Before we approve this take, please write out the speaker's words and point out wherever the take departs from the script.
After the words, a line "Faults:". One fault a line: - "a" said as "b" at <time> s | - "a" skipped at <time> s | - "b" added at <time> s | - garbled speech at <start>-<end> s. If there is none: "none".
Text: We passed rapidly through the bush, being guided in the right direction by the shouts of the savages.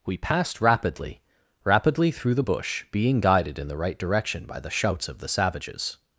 We passed rapidly rapidly through the bush, being guided in the right direction by the shouts of the savages.
Faults:
- "rapidly" added at 1.6 s